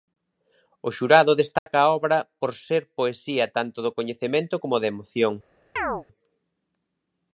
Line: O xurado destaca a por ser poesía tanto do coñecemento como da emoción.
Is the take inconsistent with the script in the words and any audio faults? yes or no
yes